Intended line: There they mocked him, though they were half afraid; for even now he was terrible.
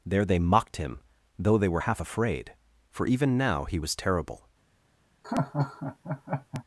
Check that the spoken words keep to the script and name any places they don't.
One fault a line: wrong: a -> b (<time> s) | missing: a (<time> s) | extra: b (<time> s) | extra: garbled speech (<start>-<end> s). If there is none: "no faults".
no faults